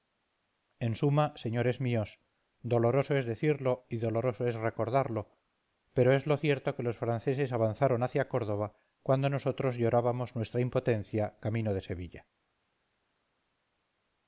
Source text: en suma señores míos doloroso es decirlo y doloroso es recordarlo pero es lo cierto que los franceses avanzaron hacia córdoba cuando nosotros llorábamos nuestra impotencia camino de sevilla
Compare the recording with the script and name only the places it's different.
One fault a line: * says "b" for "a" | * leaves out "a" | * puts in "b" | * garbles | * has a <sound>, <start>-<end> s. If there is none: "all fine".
all fine